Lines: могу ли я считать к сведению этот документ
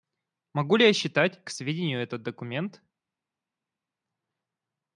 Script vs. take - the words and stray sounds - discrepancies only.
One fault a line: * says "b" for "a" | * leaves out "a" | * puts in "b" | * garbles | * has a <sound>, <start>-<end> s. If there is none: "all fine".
all fine